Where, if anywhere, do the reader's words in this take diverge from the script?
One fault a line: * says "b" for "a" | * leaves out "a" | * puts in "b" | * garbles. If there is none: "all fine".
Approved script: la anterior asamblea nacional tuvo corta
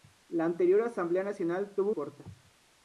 all fine